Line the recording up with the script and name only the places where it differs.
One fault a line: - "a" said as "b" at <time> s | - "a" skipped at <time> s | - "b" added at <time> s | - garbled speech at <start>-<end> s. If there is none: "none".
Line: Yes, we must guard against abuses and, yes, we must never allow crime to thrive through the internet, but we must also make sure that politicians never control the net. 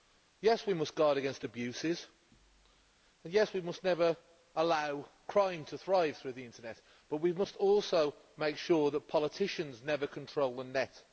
none